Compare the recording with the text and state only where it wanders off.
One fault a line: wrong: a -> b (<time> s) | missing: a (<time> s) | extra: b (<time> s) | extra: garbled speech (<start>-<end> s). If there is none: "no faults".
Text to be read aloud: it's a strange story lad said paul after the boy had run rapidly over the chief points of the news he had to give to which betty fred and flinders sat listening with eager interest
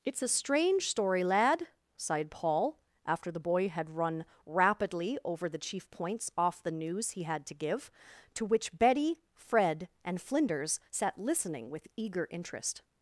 wrong: said -> sighed (2.0 s)
wrong: of -> off (6.4 s)